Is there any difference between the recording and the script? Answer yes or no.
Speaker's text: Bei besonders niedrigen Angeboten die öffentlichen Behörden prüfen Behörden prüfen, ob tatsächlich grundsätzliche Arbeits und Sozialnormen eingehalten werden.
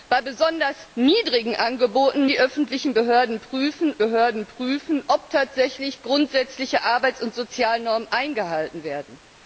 no